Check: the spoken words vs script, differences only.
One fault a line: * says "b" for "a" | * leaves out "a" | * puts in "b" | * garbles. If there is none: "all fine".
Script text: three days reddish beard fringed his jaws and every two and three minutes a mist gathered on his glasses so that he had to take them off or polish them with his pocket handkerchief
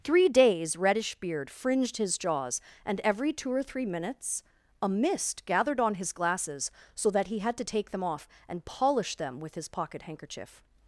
* says "or" for "and"
* says "and" for "or"